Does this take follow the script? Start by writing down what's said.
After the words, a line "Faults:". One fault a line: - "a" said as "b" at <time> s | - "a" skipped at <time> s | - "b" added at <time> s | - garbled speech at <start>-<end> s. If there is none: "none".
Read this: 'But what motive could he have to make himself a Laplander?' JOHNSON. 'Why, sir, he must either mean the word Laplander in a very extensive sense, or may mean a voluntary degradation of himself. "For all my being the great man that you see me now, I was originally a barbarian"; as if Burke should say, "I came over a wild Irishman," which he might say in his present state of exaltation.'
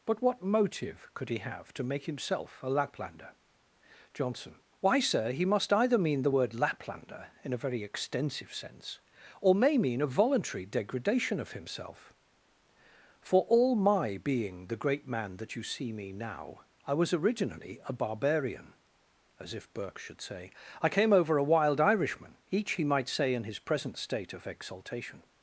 'But what motive could he have to make himself a Laplander?' JOHNSON. 'Why, sir, he must either mean the word Laplander in a very extensive sense, or may mean a voluntary degradation of himself. "For all my being the great man that you see me now, I was originally a barbarian"; as if Burke should say, "I came over a wild Irishman," each he might say in his present state of exaltation.'
Faults:
- "which" said as "each" at 22.5 s